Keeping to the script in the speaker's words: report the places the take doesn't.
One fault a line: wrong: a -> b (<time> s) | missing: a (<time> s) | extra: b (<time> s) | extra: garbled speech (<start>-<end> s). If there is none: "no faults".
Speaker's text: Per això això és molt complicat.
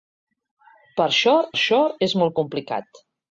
no faults